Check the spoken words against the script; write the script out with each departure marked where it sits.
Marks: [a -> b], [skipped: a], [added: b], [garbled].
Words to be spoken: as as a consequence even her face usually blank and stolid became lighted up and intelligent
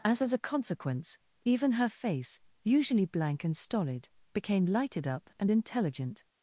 as as a consequence even her face usually blank and stolid became lighted up and intelligent